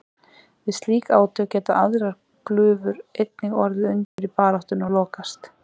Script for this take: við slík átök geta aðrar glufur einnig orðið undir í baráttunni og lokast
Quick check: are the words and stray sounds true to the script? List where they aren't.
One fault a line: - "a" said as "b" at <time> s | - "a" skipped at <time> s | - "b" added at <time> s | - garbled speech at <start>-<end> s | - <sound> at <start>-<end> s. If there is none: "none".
- dropout at 4.0-4.2 s